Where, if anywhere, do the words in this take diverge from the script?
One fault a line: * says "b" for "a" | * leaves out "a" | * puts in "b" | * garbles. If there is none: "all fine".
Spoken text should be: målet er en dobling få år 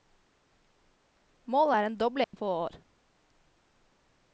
all fine